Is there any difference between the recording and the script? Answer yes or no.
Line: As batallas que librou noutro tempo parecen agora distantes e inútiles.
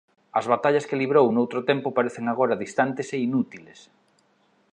no